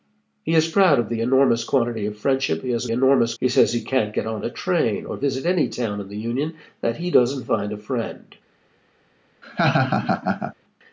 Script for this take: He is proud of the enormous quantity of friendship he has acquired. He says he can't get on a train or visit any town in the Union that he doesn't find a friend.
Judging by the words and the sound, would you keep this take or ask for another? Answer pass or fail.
fail